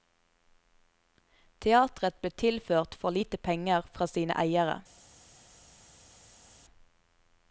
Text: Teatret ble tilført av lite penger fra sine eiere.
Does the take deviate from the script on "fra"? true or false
false